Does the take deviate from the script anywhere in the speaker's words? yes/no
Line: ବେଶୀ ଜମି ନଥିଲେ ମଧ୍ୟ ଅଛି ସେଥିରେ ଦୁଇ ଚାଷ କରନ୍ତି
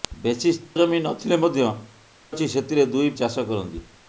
no